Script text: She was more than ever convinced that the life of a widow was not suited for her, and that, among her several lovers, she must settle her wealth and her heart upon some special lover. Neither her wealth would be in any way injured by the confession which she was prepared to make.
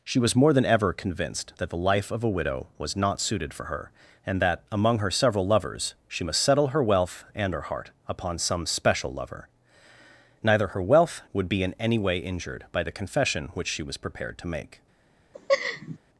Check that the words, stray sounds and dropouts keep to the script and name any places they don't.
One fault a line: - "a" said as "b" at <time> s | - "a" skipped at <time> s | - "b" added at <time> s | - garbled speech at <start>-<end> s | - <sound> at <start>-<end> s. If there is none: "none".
- laugh at 15.3-16.0 s